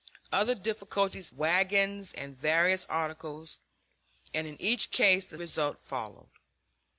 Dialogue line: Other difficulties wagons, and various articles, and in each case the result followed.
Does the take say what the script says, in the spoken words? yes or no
yes